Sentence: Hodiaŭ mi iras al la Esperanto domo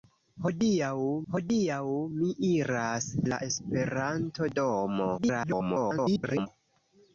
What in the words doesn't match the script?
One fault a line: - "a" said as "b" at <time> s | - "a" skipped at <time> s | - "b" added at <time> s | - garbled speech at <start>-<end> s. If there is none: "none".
- "hodiaŭ" added at 1.3 s
- "al" skipped at 3.1 s
- garbled speech at 5.2-6.5 s